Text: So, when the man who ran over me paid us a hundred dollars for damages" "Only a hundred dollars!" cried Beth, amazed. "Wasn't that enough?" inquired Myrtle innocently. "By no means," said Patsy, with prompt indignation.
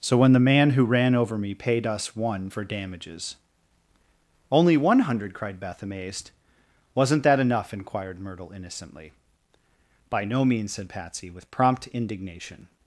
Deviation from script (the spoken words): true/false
true